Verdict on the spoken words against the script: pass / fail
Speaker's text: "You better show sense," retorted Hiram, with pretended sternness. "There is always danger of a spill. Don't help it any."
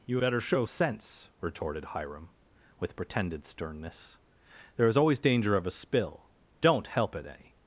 pass